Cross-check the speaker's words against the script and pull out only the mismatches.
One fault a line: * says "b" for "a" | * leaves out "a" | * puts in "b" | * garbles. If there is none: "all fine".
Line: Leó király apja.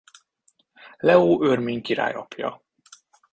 * puts in "örmény"